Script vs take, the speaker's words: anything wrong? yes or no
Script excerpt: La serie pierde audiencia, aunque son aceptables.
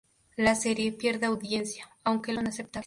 no